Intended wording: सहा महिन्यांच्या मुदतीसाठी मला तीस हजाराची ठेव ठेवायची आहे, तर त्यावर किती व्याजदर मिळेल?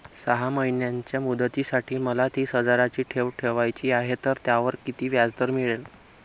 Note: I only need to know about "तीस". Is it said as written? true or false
true